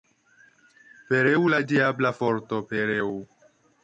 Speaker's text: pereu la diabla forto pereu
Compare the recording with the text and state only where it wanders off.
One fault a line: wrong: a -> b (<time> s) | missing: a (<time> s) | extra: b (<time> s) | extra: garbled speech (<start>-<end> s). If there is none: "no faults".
no faults